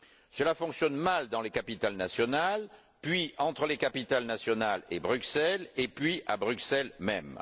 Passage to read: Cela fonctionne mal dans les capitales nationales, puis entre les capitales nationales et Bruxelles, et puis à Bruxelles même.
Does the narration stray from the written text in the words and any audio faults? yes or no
no